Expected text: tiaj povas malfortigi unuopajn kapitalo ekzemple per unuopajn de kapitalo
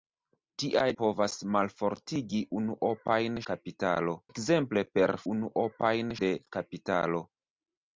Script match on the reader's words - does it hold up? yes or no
yes